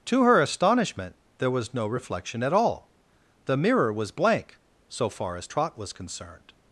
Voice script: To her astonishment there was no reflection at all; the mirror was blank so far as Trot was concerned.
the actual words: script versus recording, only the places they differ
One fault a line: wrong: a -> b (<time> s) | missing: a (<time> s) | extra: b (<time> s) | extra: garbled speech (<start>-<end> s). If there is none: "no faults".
no faults